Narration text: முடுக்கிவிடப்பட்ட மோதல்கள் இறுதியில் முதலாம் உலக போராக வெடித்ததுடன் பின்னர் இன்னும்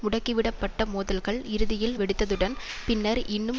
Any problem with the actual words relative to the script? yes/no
yes